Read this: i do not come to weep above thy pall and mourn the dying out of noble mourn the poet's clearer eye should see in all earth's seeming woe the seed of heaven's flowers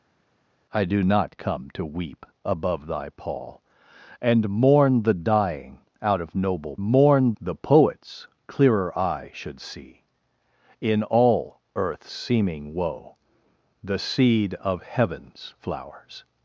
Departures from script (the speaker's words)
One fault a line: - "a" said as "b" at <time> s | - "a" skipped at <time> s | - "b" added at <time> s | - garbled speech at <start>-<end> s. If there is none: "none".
none